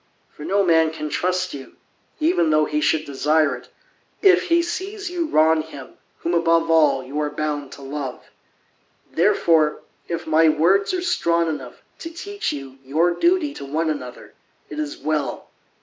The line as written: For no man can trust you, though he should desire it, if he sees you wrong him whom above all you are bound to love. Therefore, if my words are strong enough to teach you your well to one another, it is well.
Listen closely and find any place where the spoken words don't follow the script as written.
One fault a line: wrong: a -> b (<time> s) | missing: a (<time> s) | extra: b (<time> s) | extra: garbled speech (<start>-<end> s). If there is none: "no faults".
extra: even (2.2 s)
wrong: well -> duty (13.2 s)